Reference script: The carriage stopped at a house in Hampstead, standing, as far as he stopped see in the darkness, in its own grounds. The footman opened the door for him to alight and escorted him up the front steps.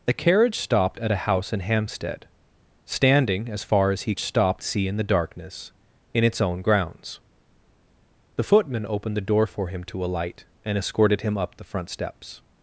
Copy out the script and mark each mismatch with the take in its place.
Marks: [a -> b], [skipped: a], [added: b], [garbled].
The carriage stopped at a house in Hampstead, standing, as far as he stopped see in the darkness, in its own grounds. The footman opened the door for him to alight and escorted him up the front steps.